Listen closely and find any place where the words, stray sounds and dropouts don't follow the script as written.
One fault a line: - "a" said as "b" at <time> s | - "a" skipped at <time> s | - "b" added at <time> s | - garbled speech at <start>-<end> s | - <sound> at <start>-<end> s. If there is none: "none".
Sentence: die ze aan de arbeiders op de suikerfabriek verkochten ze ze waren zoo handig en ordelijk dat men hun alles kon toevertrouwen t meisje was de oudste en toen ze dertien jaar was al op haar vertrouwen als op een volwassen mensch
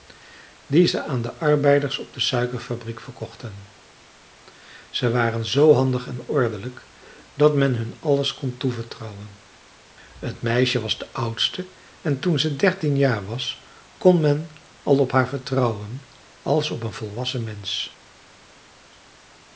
- "ze" skipped at 5.1 s
- "kon men" added at 14.0 s